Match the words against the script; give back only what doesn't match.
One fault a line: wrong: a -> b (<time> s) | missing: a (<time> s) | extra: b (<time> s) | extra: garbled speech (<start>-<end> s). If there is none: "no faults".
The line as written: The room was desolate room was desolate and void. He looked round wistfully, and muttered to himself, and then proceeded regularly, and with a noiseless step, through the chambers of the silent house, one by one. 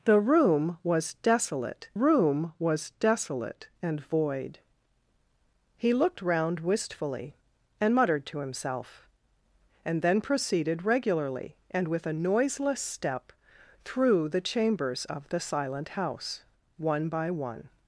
no faults